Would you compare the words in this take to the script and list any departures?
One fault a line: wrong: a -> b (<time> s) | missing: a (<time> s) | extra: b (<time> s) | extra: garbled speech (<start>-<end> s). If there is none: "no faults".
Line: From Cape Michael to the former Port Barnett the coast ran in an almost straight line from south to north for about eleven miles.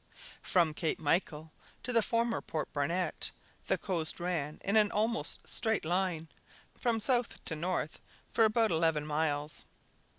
no faults